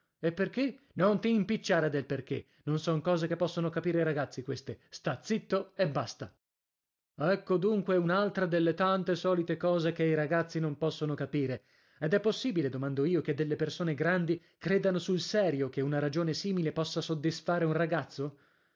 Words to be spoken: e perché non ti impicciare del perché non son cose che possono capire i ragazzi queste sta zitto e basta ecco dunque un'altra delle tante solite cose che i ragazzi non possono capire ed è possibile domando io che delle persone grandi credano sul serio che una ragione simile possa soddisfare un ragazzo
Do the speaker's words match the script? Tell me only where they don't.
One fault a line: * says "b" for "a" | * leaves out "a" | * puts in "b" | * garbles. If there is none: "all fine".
all fine